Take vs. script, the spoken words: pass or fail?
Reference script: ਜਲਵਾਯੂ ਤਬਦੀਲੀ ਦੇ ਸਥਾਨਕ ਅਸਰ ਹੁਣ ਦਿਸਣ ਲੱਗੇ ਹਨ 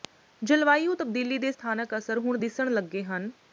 pass